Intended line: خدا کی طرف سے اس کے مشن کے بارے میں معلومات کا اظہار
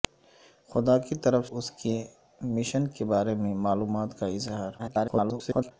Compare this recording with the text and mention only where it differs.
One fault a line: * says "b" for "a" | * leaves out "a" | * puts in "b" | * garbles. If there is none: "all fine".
* leaves out "سے"
* garbles